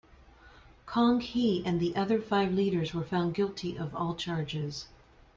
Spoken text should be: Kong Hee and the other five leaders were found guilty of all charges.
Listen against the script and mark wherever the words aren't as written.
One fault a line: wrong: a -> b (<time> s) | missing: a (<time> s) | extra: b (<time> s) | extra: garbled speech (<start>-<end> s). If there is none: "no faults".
no faults